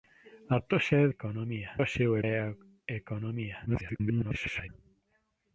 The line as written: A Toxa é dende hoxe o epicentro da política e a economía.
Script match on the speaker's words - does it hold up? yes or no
no